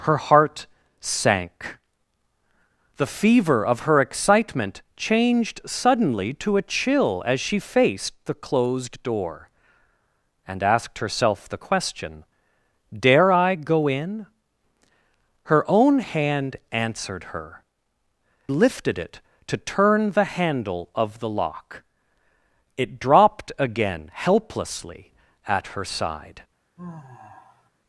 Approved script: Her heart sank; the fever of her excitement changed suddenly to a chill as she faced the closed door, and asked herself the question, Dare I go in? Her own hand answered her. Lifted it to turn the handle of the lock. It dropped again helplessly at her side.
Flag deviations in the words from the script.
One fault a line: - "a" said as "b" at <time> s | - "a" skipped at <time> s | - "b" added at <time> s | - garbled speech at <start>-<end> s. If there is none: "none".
none